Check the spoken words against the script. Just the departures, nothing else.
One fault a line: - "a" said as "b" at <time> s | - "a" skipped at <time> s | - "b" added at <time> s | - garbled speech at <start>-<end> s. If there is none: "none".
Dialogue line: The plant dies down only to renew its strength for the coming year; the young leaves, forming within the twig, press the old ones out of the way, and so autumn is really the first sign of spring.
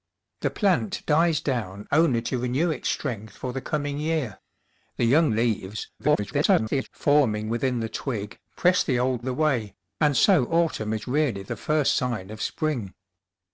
- garbled speech at 6.0-6.9 s
- "ones out of" skipped at 9.2 s